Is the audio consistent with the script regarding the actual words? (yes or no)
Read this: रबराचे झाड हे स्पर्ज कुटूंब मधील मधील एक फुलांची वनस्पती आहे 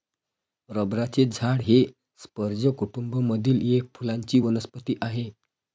no